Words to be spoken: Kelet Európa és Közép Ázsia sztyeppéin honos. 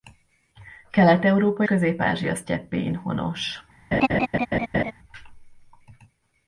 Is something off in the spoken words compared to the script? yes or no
yes